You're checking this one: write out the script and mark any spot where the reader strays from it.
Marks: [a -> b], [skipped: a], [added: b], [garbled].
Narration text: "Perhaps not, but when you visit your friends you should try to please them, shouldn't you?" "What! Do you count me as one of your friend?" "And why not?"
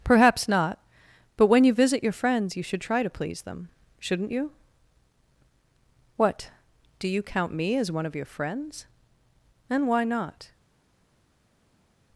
"Perhaps not, but when you visit your friends you should try to please them, shouldn't you?" "What! Do you count me as one of your [friend?" -> friends] "And why not?"